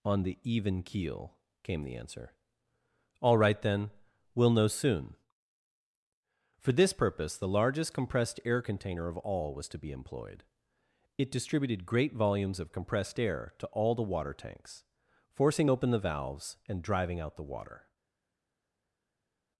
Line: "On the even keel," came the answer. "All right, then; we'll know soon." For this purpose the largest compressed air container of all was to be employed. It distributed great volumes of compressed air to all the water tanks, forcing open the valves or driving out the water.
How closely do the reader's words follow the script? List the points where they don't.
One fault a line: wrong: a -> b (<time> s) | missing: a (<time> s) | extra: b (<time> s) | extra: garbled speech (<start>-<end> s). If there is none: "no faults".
wrong: or -> and (16.7 s)